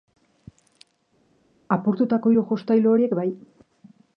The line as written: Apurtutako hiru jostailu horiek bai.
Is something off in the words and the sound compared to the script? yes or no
no